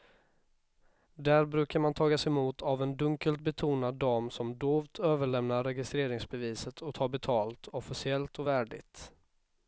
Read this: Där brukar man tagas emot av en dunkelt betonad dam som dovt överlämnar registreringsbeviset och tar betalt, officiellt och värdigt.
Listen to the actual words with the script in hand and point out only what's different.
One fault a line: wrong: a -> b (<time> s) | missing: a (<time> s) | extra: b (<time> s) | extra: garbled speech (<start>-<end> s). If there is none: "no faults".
no faults